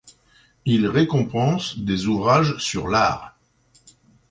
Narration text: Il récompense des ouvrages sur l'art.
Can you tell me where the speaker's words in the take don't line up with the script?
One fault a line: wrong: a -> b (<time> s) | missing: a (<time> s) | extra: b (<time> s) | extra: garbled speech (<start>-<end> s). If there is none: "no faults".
no faults